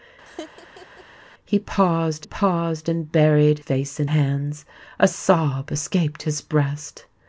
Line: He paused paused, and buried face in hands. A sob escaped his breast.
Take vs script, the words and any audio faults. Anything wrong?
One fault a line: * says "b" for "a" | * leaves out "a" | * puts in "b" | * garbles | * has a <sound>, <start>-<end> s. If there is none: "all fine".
* has a laugh, 0.3-1.0 s